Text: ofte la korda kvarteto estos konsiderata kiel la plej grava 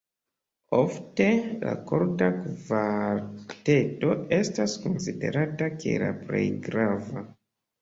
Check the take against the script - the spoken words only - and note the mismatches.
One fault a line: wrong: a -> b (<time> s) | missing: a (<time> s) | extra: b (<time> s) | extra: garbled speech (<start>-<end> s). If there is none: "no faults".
wrong: estos -> estas (4.4 s)